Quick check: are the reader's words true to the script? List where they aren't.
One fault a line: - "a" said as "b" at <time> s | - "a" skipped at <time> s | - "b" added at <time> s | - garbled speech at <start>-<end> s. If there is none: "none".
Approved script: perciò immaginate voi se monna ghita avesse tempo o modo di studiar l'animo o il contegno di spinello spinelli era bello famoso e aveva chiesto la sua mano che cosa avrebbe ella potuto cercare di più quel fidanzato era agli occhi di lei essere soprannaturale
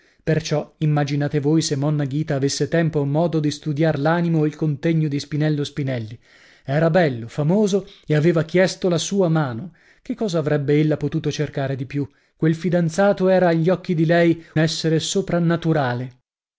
none